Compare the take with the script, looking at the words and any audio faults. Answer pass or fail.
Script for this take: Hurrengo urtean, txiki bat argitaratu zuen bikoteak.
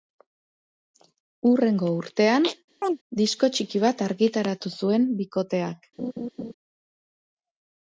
fail